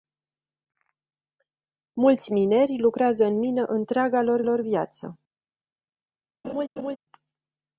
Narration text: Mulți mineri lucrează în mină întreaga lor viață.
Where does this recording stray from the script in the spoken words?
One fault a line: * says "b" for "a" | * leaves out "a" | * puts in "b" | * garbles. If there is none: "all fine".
* puts in "lor"